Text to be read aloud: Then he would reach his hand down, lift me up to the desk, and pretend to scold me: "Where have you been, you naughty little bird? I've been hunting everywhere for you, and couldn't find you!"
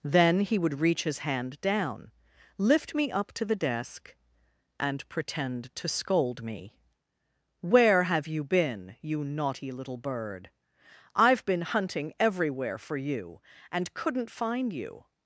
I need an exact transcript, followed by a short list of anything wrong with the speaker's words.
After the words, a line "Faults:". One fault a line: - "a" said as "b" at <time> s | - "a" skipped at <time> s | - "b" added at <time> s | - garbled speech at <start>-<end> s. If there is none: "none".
Then he would reach his hand down, lift me up to the desk, and pretend to scold me: "Where have you been, you naughty little bird? I've been hunting everywhere for you, and couldn't find you!"
Faults:
none